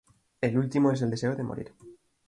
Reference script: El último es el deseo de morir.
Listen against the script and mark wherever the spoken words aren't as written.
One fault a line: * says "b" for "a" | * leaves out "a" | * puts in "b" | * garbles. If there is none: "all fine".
all fine